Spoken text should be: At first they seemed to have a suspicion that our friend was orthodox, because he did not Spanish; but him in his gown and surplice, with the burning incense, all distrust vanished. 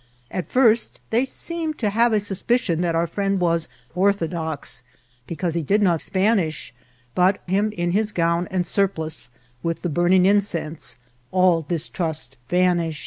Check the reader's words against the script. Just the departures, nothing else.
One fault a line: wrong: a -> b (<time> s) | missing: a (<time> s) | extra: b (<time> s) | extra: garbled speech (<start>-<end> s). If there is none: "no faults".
no faults